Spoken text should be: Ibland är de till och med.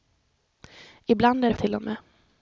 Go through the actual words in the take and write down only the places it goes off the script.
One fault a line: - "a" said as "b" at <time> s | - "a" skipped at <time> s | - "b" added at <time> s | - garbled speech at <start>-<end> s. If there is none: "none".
none